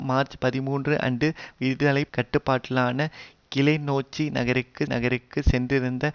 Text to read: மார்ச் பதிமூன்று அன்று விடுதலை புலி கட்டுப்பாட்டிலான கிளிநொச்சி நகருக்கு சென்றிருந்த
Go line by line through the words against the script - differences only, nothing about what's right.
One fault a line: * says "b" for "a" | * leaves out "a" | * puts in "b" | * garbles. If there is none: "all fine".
* leaves out "புலி"
* puts in "நகருக்கு"